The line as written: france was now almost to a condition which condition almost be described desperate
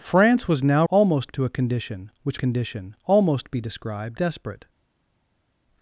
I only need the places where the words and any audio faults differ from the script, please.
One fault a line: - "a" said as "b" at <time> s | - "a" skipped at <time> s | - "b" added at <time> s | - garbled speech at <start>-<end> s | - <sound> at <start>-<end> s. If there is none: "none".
none